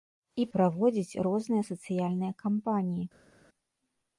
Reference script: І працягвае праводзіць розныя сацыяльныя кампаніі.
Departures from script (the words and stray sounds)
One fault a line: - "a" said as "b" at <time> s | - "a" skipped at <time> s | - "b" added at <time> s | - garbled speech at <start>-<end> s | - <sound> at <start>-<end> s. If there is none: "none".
- "працягвае" skipped at 0.5 s